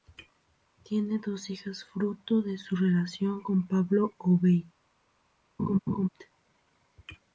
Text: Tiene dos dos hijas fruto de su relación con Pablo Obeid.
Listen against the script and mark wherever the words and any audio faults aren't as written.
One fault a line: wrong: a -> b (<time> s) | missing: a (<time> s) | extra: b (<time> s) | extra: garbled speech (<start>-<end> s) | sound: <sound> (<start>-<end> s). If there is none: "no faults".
missing: dos (1.5 s)
sound: laugh (5.6-6.1 s)